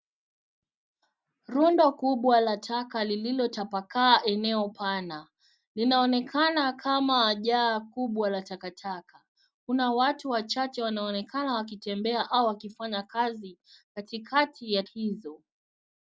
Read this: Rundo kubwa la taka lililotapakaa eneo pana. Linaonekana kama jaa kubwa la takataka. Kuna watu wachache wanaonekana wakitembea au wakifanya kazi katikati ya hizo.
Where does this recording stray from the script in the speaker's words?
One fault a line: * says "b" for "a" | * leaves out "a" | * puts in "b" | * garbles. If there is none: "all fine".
all fine